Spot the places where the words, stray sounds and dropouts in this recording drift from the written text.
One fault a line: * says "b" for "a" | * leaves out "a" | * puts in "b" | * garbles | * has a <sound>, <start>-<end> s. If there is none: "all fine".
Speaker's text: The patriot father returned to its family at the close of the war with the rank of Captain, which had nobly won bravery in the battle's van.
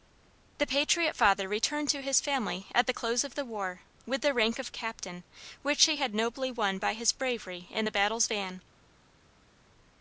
* says "his" for "its"
* puts in "he"
* puts in "by his"